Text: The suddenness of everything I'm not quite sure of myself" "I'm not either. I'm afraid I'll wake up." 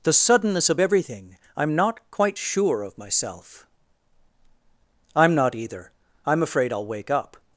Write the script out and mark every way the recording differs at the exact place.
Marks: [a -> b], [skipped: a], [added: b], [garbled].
The suddenness of everything I'm not quite sure of myself" "I'm not either. I'm afraid I'll wake up."